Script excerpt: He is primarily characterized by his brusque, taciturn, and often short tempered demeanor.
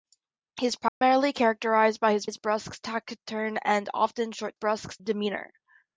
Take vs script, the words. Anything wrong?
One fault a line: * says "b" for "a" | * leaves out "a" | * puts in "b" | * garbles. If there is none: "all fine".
* puts in "his"
* says "brusque" for "tempered"